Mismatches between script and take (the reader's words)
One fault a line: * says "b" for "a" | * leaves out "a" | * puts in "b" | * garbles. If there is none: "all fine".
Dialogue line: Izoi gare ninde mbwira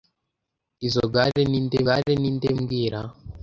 * puts in "gare ninde"